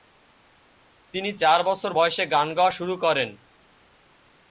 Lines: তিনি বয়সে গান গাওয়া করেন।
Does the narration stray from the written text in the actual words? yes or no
yes